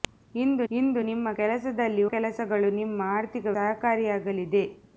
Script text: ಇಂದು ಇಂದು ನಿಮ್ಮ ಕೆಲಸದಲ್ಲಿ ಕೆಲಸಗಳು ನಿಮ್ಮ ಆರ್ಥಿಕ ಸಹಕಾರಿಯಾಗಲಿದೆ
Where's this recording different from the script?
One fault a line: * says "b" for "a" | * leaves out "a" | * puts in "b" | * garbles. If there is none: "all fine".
all fine